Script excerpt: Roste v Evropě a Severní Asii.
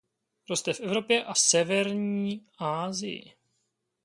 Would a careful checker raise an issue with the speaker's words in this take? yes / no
no